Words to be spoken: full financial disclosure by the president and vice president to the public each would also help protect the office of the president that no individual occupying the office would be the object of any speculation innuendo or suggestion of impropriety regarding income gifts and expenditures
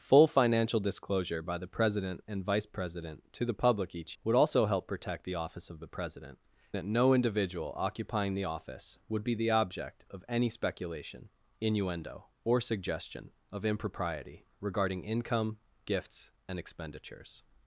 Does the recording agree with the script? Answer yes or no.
yes